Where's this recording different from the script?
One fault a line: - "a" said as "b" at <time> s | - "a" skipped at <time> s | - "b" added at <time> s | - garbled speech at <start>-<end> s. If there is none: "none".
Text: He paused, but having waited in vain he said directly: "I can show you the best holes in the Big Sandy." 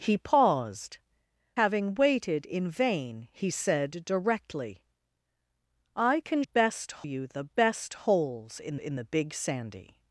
- "but" skipped at 1.0 s
- "show" said as "best" at 6.4 s
- "in" added at 8.8 s